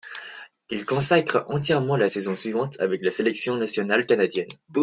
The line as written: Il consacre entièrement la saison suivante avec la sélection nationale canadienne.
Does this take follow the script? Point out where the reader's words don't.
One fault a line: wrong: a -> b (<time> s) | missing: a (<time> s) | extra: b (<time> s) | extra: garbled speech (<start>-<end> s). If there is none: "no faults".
no faults